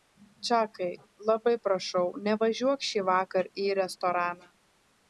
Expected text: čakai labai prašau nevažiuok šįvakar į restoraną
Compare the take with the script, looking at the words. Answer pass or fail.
pass